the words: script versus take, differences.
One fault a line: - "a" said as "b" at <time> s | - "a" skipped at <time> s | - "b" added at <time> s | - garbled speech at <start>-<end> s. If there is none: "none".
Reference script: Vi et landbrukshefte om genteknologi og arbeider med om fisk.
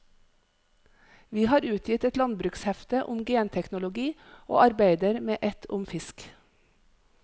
- "har utgitt" added at 1.5 s
- "et" added at 5.5 s